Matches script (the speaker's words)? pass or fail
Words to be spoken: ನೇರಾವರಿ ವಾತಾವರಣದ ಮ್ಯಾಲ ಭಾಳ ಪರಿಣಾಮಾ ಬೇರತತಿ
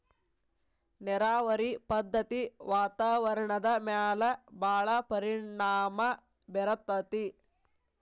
fail